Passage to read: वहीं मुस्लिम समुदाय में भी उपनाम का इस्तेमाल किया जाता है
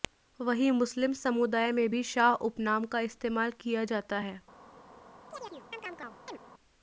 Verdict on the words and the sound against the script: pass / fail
fail